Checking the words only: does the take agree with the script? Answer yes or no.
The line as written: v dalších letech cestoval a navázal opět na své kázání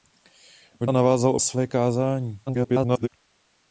no